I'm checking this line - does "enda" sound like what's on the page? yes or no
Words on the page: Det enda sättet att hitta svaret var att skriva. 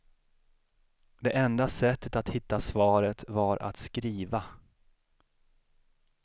yes